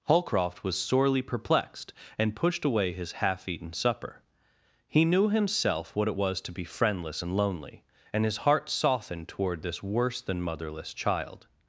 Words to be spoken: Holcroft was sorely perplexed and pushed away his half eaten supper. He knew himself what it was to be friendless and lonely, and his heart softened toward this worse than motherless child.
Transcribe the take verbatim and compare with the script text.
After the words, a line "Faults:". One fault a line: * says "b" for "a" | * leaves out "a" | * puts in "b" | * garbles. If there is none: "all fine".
Holcroft was sorely perplexed and pushed away his half eaten supper. He knew himself what it was to be friendless and lonely, and his heart softened toward this worse than motherless child.
Faults:
all fine